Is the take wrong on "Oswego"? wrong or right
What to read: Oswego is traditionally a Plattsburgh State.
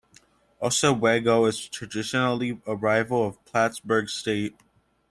right